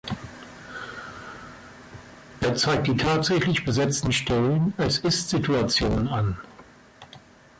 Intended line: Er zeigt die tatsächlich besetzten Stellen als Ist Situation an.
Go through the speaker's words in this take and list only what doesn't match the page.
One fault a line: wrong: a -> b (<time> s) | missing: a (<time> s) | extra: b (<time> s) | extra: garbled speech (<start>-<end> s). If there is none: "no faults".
no faults